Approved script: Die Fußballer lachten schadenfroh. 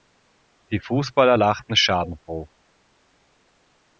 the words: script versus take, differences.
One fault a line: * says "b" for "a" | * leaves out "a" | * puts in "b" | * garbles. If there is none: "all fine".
all fine